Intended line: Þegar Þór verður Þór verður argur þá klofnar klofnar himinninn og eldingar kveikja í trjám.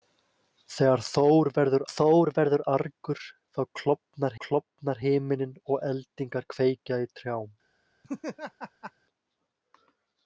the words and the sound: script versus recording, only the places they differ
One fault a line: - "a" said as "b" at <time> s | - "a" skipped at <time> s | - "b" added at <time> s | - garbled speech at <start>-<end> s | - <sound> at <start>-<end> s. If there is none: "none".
- laugh at 8.0-8.9 s